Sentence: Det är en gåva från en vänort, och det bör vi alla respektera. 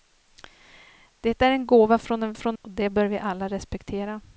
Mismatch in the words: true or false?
true